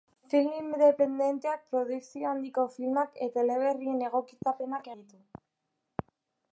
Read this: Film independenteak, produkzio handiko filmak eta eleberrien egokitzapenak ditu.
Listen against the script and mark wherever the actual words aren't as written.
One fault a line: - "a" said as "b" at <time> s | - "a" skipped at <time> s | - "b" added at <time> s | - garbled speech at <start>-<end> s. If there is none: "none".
none